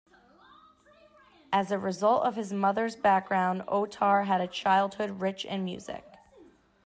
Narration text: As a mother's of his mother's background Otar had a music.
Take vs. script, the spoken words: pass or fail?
fail